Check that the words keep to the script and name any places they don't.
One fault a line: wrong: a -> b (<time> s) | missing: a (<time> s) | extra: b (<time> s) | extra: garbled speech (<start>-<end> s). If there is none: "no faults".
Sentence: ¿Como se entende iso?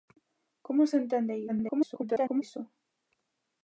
extra: garbled speech (1.5-2.4 s)